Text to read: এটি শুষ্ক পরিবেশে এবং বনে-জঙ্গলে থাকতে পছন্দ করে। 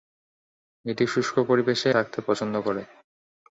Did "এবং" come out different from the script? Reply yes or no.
yes